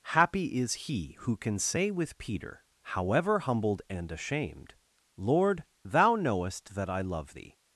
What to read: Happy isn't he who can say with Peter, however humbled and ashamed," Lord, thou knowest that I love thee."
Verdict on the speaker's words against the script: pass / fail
fail